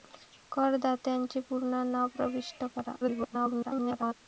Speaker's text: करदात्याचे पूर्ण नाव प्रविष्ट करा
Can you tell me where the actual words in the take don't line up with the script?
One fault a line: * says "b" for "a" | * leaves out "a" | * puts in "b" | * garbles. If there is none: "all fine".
* garbles